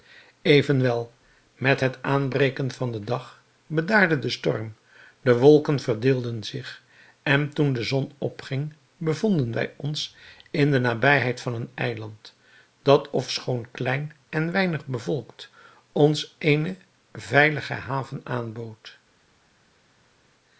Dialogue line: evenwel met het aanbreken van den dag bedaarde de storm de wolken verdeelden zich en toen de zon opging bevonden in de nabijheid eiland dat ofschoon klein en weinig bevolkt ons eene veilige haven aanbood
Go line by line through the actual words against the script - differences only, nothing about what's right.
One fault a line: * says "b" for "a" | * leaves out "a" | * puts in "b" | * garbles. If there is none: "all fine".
* puts in "wij ons"
* puts in "van een"